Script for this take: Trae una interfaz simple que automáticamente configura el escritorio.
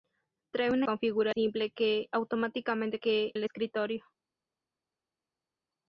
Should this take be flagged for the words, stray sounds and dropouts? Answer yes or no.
yes